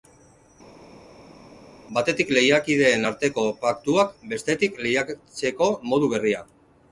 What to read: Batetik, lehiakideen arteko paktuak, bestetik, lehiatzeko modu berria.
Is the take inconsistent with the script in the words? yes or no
no